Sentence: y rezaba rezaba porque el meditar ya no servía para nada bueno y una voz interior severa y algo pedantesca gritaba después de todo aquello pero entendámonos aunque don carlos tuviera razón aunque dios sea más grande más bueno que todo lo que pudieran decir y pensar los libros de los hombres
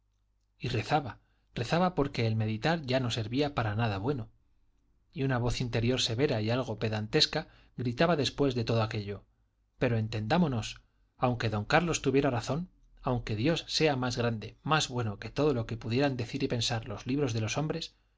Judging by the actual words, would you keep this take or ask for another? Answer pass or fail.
pass